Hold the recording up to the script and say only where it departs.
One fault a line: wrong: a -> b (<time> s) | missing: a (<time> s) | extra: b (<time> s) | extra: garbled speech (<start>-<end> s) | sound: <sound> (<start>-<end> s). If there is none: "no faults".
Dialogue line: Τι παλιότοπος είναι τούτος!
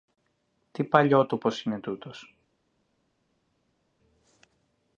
no faults